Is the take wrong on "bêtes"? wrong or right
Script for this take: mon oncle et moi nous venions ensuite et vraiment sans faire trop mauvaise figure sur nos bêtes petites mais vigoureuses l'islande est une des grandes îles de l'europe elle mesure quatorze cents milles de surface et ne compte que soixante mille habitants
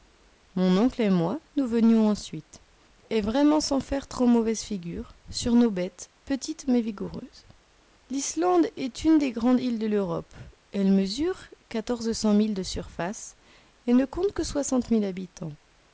right